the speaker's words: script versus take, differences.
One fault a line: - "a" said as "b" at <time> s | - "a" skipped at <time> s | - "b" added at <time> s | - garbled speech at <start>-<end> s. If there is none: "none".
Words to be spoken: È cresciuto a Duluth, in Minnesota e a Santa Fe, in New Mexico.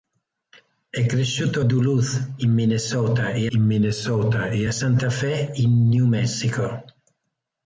- "in Minnesota e" added at 3.5 s